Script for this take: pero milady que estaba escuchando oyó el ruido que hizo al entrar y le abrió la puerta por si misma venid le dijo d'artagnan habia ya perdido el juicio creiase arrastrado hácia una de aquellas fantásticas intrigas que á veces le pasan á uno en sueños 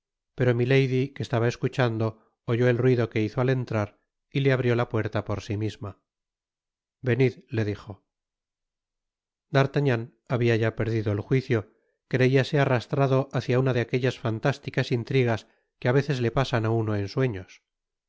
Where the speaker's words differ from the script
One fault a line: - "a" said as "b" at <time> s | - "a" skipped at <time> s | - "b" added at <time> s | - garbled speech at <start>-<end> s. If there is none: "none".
none